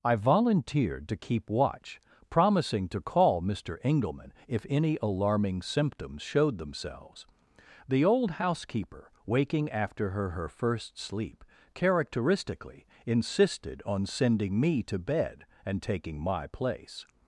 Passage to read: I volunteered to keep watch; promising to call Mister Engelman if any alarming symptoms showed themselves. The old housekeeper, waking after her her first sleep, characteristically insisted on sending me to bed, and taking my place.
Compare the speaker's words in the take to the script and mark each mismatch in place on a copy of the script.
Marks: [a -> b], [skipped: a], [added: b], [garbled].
I volunteered to keep watch; promising to call Mister Engelman if any alarming symptoms showed themselves. The old housekeeper, waking after her her first sleep, characteristically insisted on sending me to bed, and taking my place.